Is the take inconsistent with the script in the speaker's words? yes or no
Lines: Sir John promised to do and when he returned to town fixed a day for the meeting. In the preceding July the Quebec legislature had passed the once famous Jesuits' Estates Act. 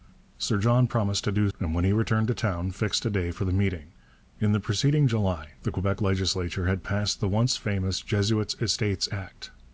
no